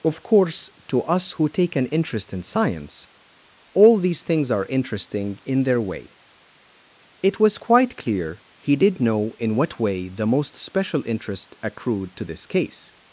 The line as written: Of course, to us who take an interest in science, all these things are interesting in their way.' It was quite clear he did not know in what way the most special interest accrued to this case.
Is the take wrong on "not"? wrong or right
wrong